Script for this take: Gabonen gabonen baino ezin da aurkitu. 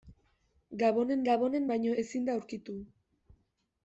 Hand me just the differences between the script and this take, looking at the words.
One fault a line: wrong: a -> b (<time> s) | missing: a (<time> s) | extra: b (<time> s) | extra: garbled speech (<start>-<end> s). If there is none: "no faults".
no faults